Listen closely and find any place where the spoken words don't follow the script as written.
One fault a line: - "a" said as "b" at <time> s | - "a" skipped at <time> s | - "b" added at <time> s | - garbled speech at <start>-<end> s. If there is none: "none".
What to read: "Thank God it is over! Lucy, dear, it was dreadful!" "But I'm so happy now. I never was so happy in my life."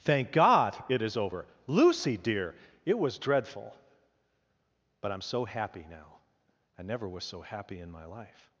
none